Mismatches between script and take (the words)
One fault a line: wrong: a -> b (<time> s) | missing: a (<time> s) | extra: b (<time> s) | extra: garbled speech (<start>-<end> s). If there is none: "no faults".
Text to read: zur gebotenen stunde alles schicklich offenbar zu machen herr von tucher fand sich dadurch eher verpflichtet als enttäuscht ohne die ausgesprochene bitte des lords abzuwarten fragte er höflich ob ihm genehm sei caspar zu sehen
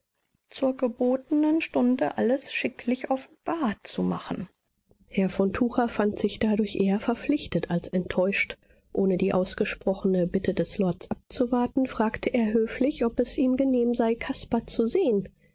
extra: es (13.2 s)